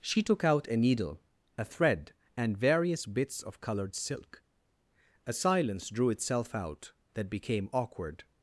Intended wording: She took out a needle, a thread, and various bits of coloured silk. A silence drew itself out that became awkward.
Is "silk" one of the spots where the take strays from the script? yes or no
no